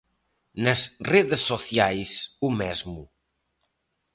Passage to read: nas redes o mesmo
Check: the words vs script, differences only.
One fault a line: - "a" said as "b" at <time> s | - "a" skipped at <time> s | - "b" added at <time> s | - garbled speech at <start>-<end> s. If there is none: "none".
- "sociais" added at 1.5 s